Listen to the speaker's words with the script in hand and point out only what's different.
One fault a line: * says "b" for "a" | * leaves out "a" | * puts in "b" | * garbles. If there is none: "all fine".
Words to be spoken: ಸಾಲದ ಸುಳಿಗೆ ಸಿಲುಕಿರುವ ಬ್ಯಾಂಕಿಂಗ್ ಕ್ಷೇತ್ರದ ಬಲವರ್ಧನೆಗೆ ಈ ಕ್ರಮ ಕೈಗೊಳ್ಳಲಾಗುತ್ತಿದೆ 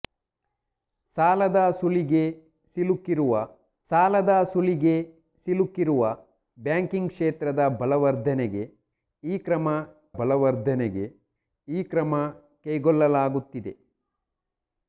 * puts in "ಸಾಲದ ಸುಳಿಗೆ ಸಿಲುಕಿರುವ"
* puts in "ಬಲವರ್ಧನೆಗೆ ಈ ಕ್ರಮ"